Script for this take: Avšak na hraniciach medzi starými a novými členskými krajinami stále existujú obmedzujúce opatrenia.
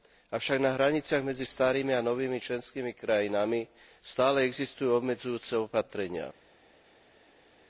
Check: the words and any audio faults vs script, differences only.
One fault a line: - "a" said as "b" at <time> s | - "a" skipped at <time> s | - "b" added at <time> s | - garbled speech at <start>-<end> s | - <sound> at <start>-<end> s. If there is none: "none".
none